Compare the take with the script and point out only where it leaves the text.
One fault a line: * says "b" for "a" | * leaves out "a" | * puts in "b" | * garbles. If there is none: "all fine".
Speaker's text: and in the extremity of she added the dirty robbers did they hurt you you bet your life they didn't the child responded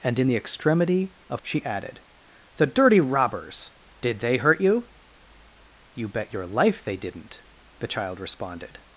all fine